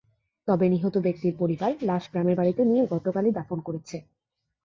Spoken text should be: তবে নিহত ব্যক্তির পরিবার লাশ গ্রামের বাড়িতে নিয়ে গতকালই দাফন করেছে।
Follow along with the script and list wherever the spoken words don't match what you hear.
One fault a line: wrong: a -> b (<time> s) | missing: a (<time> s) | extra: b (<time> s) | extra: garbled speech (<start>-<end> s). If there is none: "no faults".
no faults